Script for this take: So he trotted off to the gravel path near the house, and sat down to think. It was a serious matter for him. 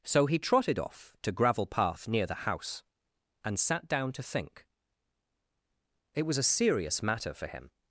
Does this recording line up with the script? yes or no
no